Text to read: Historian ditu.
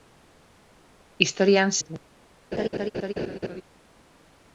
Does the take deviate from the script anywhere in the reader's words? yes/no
no